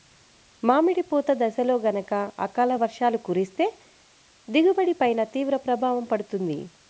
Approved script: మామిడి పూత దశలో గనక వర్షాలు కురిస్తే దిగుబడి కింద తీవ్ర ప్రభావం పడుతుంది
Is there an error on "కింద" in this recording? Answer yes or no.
yes